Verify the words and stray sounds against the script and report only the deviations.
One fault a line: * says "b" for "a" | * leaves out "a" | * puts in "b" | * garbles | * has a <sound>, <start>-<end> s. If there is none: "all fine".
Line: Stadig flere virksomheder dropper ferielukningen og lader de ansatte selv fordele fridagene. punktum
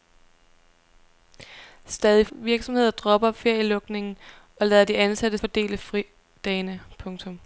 * leaves out "flere"
* leaves out "selv"